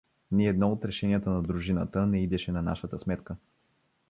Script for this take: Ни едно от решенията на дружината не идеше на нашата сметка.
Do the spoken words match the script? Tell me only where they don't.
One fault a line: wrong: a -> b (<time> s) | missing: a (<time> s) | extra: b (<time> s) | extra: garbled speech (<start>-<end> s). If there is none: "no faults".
no faults